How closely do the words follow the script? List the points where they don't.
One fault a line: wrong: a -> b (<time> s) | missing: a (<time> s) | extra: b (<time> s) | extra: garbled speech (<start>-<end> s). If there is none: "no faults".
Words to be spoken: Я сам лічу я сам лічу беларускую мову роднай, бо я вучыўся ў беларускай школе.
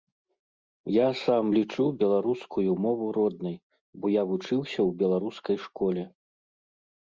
missing: я сам лічу (1.8 s)